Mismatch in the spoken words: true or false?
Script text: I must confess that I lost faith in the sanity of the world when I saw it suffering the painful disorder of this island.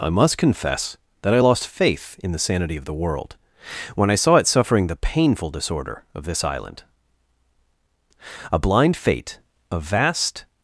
true